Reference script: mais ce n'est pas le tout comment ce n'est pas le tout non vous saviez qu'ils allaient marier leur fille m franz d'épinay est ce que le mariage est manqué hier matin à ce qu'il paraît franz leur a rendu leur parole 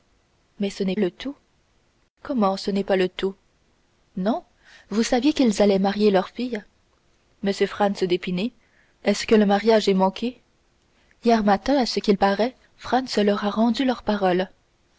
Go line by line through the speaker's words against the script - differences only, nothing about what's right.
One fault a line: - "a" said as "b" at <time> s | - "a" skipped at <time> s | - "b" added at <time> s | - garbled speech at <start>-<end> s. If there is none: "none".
- "pas" skipped at 0.9 s